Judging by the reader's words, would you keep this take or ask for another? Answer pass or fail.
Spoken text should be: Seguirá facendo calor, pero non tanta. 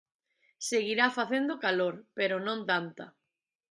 pass